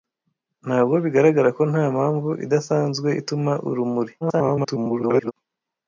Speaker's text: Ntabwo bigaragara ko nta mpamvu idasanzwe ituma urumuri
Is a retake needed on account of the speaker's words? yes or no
yes